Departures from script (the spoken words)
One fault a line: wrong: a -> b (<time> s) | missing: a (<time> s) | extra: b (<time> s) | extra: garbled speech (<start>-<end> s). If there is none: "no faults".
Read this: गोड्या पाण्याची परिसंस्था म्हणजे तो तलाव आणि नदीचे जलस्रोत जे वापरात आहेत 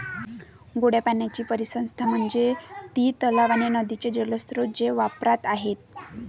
wrong: तो -> ती (2.9 s)